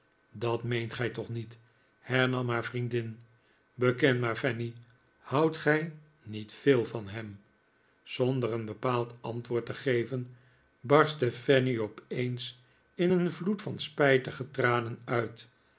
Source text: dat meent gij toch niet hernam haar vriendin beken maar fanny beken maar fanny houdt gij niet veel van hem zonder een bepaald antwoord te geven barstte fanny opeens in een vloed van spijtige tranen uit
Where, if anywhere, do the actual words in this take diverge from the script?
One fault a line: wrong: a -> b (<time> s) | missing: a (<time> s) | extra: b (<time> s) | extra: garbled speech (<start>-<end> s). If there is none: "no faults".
missing: beken maar fanny (4.7 s)